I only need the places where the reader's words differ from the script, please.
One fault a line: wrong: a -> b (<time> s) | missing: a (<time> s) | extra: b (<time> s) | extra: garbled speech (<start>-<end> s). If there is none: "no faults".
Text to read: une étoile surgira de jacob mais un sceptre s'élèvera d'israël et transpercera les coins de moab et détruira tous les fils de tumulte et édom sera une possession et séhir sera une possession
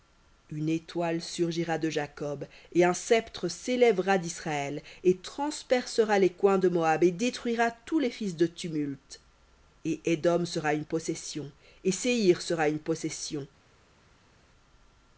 wrong: mais -> et (2.7 s)